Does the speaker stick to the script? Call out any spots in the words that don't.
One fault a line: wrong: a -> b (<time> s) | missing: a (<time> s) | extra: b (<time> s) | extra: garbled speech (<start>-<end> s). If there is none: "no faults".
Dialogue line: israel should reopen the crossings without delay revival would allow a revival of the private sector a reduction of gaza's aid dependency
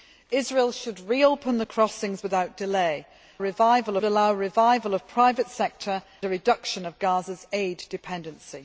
no faults